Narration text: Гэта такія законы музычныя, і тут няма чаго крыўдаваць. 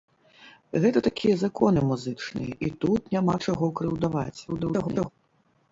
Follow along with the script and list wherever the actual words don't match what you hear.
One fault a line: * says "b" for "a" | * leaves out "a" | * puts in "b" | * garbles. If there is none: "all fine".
* garbles